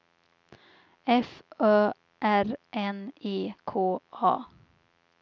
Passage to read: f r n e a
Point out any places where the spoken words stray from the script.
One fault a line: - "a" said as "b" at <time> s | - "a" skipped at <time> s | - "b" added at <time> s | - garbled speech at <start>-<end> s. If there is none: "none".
- "ö" added at 1.6 s
- "k" added at 3.7 s